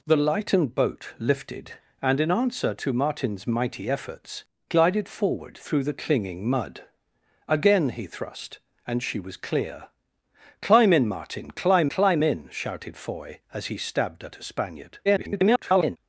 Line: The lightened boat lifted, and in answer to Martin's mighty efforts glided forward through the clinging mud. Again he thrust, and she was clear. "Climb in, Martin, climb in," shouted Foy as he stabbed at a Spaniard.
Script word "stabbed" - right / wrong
right